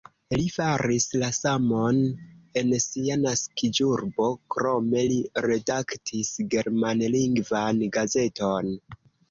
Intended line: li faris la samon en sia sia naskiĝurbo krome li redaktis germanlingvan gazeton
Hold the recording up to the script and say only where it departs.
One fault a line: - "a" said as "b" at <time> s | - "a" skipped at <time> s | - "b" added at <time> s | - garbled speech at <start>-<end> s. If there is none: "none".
- "sia" skipped at 3.2 s